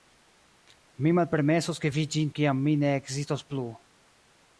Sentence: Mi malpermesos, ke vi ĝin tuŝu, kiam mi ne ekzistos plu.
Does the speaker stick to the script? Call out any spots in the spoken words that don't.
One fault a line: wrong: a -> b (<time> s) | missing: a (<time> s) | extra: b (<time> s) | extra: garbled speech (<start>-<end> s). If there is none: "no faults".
missing: tuŝu (2.3 s)